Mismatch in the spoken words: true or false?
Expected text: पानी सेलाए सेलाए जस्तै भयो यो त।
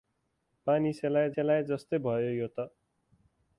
false